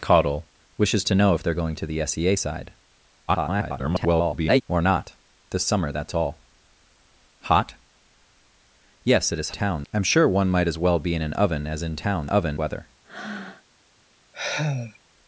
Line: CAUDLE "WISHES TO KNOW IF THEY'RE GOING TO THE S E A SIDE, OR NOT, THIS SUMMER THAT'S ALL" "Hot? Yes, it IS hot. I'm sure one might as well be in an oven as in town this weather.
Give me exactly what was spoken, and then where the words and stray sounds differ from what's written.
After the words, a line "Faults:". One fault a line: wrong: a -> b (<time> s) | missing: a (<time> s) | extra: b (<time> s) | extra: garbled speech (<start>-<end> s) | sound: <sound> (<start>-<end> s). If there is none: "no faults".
CAUDLE "WISHES TO KNOW IF THEY'RE GOING TO THE S E A SIDE, [garbled] OR NOT, THIS SUMMER THAT'S ALL" "Hot? Yes, it IS town. I'm sure one might as well be in an oven as in town oven weather.
Faults:
extra: garbled speech (3.3-4.6 s)
wrong: hot -> town (9.5 s)
wrong: this -> oven (12.3 s)
sound: breath (13.0-13.6 s)
sound: sigh (14.3-15.0 s)